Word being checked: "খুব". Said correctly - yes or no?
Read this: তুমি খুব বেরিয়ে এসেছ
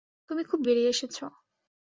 yes